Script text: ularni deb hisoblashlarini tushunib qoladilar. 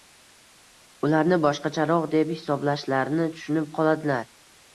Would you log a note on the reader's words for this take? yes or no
yes